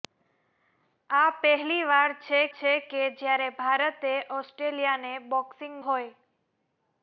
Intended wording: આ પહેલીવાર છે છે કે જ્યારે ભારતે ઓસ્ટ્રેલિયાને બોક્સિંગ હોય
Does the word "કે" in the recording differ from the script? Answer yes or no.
no